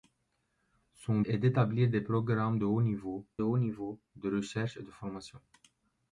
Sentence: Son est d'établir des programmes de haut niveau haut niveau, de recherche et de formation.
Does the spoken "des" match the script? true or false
true